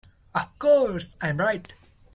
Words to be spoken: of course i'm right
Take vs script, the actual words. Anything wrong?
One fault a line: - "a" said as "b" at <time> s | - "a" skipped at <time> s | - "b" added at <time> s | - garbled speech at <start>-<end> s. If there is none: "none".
none